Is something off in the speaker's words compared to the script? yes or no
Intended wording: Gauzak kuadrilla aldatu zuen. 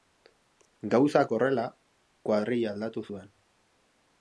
yes